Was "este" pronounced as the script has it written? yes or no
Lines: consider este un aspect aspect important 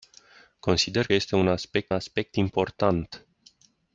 yes